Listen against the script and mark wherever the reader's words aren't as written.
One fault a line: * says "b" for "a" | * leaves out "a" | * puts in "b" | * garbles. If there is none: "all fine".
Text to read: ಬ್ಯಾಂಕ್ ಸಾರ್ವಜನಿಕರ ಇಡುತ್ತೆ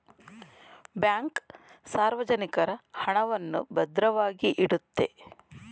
* puts in "ಹಣವನ್ನು ಭದ್ರವಾಗಿ"